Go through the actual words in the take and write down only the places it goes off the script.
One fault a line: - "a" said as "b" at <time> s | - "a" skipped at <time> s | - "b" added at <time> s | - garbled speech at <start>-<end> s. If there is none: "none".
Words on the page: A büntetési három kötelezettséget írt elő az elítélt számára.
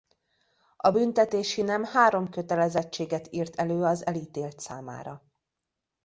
- "nem" added at 1.6 s